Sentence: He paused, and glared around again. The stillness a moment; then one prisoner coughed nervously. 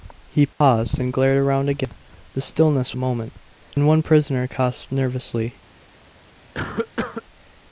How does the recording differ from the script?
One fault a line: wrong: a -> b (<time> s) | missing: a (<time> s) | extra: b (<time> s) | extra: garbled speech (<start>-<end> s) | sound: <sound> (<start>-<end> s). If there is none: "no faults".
sound: dropout (0.5-0.6 s)
sound: cough (6.5-7.2 s)